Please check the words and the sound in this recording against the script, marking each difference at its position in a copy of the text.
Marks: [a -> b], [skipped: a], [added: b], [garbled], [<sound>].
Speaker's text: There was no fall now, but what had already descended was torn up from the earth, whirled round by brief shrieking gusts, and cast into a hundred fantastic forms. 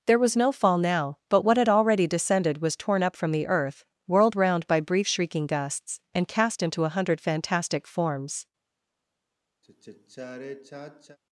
There was no fall now, but what had already descended was torn up from the earth, whirled round by brief shrieking gusts, and cast into a hundred fantastic forms. [sigh]